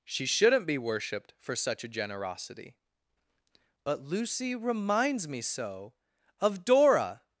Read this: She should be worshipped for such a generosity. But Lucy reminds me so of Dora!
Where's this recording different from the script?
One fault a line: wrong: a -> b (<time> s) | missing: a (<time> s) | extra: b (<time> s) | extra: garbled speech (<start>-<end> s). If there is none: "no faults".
wrong: should -> shouldn't (0.2 s)